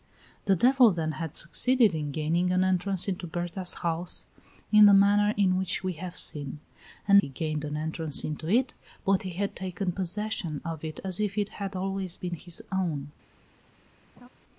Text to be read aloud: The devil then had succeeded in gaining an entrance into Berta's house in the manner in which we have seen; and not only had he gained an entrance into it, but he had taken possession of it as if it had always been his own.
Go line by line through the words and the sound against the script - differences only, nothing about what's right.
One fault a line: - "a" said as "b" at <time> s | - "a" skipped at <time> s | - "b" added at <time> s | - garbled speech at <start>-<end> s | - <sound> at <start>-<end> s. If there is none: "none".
- "not only had" skipped at 7.2 s
- laugh at 14.2-14.3 s